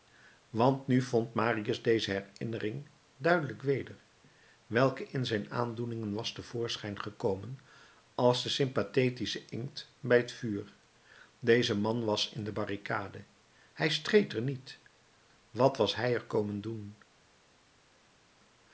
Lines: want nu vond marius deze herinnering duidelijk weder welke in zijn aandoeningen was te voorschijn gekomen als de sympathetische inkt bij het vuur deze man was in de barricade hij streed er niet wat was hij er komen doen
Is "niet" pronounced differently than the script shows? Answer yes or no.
no